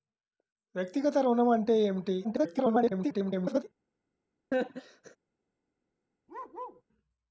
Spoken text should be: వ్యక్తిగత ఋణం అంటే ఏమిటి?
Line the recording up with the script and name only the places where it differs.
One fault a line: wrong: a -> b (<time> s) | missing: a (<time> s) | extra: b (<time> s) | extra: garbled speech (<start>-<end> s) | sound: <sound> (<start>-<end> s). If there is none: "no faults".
extra: garbled speech (2.2-3.6 s)
sound: laugh (4.5-5.2 s)
sound: bark (6.3-6.8 s)